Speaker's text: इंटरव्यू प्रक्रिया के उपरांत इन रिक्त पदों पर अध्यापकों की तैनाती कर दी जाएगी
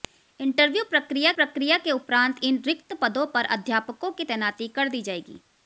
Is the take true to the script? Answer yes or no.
no